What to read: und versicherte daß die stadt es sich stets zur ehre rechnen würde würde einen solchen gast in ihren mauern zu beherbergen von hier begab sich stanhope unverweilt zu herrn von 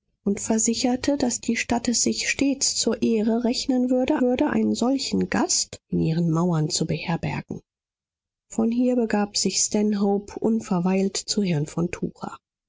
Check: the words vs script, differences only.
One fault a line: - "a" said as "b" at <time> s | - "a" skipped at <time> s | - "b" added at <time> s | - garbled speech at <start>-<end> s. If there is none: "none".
none